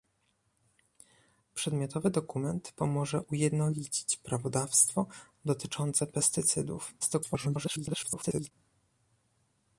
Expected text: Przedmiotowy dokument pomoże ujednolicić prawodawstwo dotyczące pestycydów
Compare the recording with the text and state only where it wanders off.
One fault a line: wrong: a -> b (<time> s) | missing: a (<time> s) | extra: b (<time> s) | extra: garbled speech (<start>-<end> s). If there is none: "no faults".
extra: garbled speech (7.0-8.5 s)